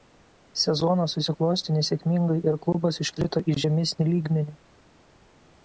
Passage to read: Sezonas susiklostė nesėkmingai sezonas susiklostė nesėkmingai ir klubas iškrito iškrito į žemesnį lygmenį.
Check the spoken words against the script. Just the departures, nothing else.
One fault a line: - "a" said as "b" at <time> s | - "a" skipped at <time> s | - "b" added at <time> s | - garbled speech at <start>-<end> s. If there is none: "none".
- "sezonas susiklostė nesėkmingai" skipped at 2.4 s
- "iškrito" skipped at 3.4 s